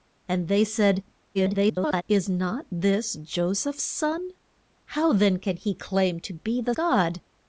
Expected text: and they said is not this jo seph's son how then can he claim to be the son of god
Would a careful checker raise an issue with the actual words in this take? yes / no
yes